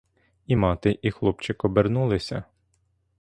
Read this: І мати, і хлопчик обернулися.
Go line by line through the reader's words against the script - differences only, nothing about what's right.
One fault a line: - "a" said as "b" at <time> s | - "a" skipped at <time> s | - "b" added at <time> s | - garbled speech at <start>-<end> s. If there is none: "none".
none